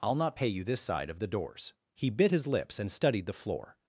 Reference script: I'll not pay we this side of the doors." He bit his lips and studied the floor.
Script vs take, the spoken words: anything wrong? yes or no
yes